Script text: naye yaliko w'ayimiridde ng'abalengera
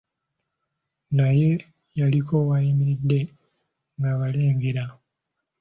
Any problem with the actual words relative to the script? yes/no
no